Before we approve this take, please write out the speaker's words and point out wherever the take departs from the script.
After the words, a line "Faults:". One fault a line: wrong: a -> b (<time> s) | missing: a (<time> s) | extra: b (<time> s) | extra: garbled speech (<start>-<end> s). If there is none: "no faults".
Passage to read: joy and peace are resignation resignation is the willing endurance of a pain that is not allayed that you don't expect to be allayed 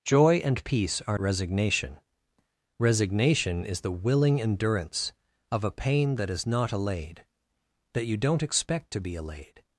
joy and peace are resignation resignation is the willing endurance of a pain that is not allayed that you don't expect to be allayed
Faults:
no faults